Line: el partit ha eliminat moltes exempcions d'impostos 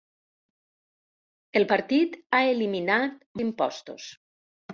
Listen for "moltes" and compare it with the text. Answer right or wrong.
wrong